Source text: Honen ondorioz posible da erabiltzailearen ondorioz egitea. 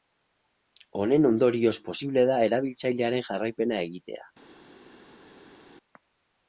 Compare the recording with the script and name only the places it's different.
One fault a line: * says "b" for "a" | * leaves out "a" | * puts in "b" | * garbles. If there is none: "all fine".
* says "jarraipena" for "ondorioz"